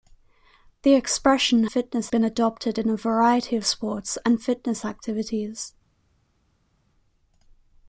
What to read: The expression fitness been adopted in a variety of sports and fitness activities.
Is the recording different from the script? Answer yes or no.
no